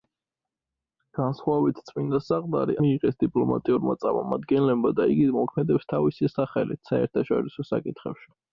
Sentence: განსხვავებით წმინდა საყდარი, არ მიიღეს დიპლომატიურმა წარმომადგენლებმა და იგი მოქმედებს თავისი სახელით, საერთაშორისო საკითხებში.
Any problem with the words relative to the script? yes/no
yes